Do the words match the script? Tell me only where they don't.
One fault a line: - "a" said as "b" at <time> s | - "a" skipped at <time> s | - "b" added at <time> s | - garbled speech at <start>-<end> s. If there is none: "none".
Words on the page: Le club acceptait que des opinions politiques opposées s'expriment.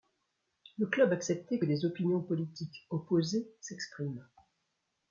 none